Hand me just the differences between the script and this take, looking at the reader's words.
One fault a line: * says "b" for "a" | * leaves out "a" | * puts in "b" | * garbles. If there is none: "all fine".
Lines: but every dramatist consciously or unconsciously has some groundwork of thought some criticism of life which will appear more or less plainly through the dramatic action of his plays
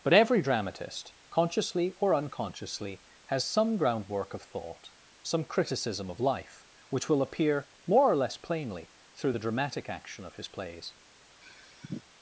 all fine